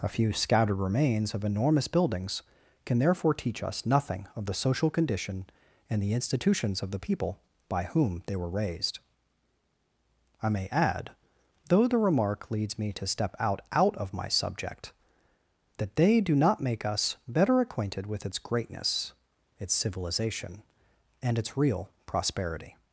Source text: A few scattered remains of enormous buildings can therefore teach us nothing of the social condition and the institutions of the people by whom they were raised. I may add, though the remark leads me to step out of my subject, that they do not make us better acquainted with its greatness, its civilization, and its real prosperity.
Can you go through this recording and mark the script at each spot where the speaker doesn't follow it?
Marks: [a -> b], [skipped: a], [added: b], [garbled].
A few scattered remains of enormous buildings can therefore teach us nothing of the social condition and the institutions of the people by whom they were raised. I may add, though the remark leads me to step out [added: out] of my subject, that they do not make us better acquainted with its greatness, its civilization, and its real prosperity.